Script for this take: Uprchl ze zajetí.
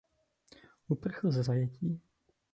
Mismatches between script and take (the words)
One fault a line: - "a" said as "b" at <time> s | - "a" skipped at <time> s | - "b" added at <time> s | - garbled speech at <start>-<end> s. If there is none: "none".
none